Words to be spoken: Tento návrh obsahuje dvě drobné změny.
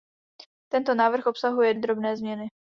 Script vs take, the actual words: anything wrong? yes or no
yes